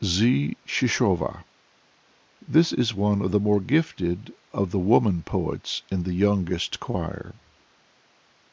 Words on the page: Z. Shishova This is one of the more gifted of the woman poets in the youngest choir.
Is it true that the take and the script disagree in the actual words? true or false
false